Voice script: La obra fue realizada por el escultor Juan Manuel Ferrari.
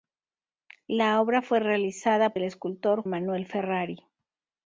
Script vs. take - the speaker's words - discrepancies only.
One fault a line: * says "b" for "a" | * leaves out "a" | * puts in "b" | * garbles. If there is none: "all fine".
* leaves out "por"
* leaves out "Juan"